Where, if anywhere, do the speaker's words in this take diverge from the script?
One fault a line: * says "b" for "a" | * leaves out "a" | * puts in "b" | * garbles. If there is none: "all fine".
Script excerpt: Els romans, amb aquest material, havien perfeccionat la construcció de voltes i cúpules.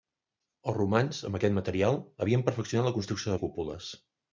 * leaves out "voltes"